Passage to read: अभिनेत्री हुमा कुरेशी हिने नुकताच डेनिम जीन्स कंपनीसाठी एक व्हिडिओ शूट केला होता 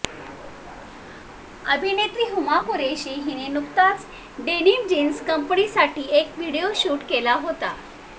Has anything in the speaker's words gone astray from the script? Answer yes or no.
no